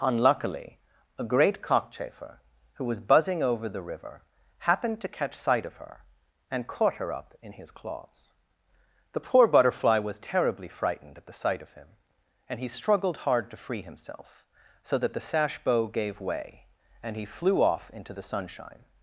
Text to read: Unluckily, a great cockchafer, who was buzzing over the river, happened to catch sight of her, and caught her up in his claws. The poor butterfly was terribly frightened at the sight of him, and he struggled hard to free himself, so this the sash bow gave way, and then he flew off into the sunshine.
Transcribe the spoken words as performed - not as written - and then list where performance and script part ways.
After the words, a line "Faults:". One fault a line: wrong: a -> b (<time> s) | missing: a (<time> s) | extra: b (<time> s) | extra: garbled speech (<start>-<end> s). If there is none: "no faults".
Unluckily, a great cockchafer, who was buzzing over the river, happened to catch sight of her, and caught her up in his claws. The poor butterfly was terribly frightened at the sight of him, and he struggled hard to free himself, so that the sash bow gave way, and he flew off into the sunshine.
Faults:
wrong: this -> that (15.0 s)
missing: then (17.2 s)